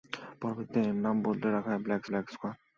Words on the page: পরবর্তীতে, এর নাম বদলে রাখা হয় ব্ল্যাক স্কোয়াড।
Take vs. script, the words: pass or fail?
fail